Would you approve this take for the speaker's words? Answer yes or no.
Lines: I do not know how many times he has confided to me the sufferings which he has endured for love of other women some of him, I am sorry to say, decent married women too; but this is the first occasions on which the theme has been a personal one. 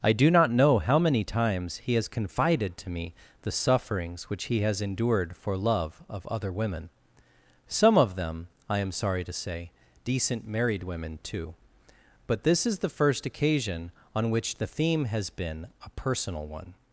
no